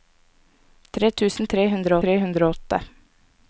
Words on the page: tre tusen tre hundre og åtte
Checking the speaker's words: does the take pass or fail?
fail